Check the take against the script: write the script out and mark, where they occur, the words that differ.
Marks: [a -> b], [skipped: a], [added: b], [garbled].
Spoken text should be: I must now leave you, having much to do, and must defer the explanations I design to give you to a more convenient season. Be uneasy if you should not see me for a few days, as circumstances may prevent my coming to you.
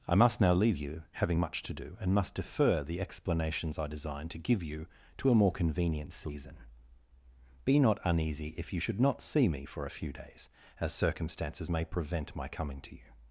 I must now leave you, having much to do, and must defer the explanations I design to give you to a more convenient season. Be [added: not] uneasy if you should not see me for a few days, as circumstances may prevent my coming to you.